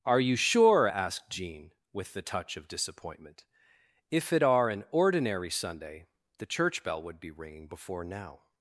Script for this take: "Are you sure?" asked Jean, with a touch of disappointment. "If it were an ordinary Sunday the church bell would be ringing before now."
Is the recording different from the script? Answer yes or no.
yes